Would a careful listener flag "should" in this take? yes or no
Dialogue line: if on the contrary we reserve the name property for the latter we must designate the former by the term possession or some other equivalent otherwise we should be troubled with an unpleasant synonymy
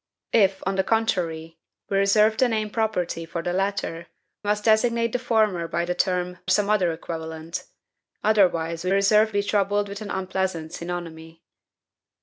yes